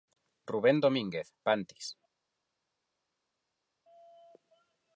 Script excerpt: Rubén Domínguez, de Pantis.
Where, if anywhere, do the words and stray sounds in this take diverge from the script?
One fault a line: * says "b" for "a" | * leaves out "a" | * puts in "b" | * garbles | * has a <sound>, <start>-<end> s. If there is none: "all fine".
* leaves out "de"